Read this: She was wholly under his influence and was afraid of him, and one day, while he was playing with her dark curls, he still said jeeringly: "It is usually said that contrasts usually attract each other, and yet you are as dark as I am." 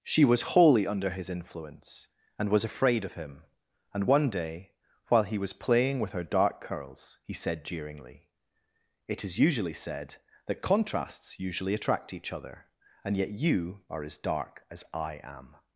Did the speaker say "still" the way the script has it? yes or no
no